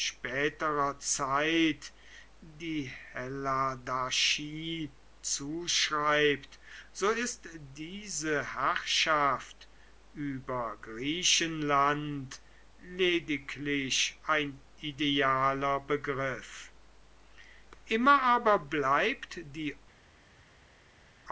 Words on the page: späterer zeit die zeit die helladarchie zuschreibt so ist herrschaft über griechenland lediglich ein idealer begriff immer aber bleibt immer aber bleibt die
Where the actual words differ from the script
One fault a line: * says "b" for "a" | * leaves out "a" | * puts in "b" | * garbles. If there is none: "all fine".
* leaves out "zeit die"
* puts in "diese"
* leaves out "immer aber bleibt"